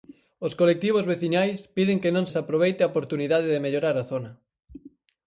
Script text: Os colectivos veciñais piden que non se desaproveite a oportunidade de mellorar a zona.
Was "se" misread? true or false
true